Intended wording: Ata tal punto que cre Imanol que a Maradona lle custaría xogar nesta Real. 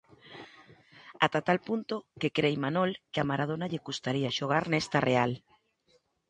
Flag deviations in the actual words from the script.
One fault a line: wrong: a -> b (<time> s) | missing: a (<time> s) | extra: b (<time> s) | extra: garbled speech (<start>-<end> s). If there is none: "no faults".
no faults